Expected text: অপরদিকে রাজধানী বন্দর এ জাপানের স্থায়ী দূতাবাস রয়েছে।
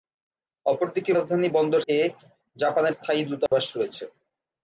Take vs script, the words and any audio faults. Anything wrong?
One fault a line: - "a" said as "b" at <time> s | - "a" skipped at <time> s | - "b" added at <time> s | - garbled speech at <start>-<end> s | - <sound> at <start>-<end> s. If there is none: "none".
- dropout at 3.5-3.5 s